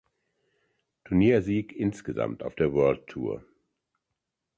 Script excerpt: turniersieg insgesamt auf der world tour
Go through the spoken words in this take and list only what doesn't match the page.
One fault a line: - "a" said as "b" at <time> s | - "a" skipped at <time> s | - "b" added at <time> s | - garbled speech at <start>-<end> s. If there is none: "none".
none